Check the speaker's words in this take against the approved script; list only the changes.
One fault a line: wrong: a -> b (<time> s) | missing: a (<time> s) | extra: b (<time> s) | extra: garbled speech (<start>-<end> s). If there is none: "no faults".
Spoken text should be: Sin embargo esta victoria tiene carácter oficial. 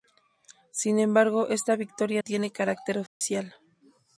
no faults